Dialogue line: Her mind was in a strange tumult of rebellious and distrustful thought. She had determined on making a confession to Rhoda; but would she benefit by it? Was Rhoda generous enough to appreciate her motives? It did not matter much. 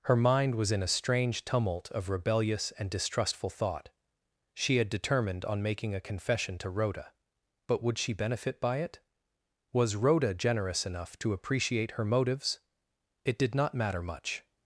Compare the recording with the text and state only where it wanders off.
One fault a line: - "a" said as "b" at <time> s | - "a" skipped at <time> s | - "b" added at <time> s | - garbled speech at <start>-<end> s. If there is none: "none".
none